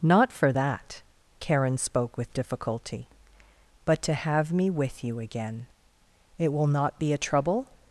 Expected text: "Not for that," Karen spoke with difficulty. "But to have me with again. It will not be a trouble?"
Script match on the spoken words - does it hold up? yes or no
no